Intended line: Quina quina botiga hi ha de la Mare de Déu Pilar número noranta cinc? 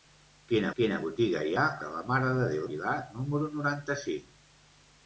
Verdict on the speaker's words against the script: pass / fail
pass